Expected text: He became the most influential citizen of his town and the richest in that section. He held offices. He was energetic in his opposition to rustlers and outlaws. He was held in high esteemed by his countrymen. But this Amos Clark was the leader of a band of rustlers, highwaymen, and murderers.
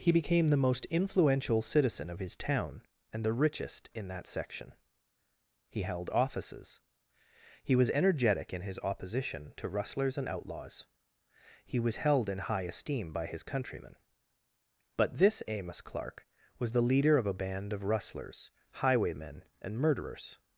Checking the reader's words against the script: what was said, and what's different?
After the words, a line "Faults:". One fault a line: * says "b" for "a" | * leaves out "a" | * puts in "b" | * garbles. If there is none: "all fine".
He became the most influential citizen of his town and the richest in that section. He held offices. He was energetic in his opposition to rustlers and outlaws. He was held in high esteem by his countrymen. But this Amos Clark was the leader of a band of rustlers, highwaymen, and murderers.
Faults:
* says "esteem" for "esteemed"